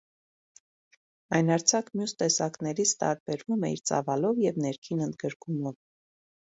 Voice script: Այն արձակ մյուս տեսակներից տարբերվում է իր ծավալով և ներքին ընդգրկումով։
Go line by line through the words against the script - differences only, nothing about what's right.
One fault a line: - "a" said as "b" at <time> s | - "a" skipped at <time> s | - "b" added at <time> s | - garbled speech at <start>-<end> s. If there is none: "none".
none